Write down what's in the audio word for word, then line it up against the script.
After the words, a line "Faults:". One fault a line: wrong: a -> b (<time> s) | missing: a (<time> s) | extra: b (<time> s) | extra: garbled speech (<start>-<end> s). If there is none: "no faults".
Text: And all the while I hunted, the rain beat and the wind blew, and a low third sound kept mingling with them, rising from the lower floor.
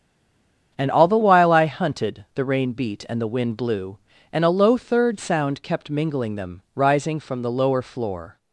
And all the while I hunted, the rain beat and the wind blew, and a low third sound kept mingling them, rising from the lower floor.
Faults:
missing: with (6.4 s)